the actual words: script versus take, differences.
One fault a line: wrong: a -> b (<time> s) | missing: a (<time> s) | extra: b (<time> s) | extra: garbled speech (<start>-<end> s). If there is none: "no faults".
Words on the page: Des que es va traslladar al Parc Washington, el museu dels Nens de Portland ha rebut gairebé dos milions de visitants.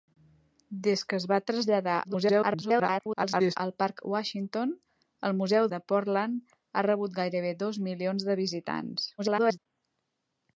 extra: garbled speech (2.0-3.6 s)
missing: dels Nens (5.7 s)
extra: garbled speech (9.2-9.7 s)